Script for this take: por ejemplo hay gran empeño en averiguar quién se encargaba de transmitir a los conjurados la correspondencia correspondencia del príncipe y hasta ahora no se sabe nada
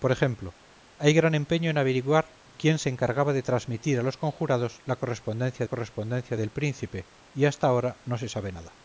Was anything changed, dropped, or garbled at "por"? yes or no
no